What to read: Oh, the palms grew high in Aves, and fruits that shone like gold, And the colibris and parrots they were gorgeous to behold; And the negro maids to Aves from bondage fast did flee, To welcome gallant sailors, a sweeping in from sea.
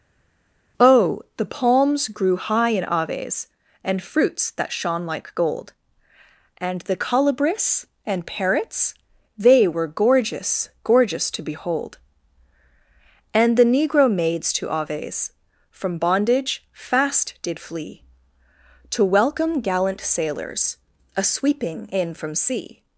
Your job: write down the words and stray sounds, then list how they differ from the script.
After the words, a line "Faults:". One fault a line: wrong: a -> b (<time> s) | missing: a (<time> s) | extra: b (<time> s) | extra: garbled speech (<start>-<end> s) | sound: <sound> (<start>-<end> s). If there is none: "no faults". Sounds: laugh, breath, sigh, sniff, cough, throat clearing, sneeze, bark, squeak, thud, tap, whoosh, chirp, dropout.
Oh, the palms grew high in Aves, and fruits that shone like gold, And the colibris and parrots they were gorgeous gorgeous to behold; And the negro maids to Aves from bondage fast did flee, To welcome gallant sailors, a sweeping in from sea.
Faults:
extra: gorgeous (10.8 s)